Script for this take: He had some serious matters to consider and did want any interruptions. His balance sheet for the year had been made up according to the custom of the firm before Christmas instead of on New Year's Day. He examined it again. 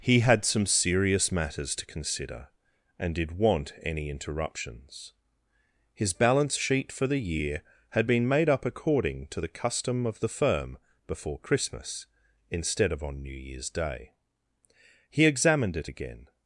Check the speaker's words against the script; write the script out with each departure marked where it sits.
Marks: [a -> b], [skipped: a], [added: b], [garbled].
He had some serious matters to consider and did want any interruptions. His balance sheet for the year had been made up according to the custom of the firm before Christmas instead of on New Year's Day. He examined it again.